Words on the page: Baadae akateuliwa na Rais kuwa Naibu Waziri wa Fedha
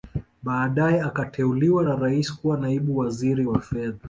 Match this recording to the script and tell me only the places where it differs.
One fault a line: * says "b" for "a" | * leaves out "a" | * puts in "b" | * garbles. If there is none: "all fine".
all fine